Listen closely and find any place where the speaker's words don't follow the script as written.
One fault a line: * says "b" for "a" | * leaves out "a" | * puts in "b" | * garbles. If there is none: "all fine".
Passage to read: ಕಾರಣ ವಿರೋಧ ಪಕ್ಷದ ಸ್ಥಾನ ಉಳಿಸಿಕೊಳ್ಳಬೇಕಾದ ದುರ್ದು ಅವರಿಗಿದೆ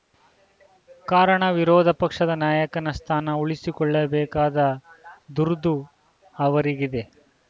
* puts in "ನಾಯಕನ"